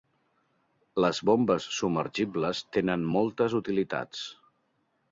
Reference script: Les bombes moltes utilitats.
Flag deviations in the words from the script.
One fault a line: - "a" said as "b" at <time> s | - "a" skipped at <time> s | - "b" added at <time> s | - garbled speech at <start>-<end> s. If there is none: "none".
- "submergibles tenen" added at 1.8 s